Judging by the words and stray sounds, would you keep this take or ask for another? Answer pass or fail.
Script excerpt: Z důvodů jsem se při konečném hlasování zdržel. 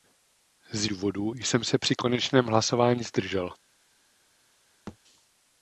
fail